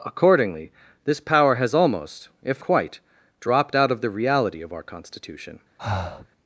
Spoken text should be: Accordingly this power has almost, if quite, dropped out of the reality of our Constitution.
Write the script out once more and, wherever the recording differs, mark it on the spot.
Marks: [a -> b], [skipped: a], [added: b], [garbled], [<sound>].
Accordingly this power has almost, if quite, dropped out of the reality of our Constitution. [breath]